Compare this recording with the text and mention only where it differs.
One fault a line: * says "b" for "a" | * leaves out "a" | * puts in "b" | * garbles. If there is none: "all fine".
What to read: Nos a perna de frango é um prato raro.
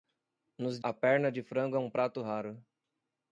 all fine